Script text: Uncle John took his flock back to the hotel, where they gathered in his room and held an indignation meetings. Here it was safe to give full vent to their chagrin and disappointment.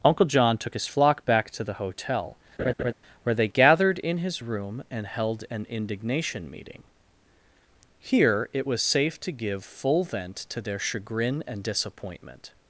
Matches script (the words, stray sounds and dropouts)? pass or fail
fail